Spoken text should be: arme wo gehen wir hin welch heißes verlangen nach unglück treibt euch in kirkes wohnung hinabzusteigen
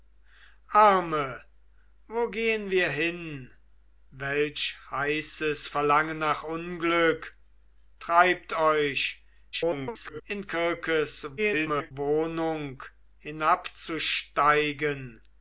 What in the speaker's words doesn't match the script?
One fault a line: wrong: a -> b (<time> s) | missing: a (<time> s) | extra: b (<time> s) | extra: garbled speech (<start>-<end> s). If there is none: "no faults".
extra: garbled speech (9.5-10.2 s)
extra: garbled speech (11.4-11.9 s)